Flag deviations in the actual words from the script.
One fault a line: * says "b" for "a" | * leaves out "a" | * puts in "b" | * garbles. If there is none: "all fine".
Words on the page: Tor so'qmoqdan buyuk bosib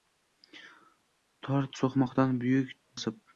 all fine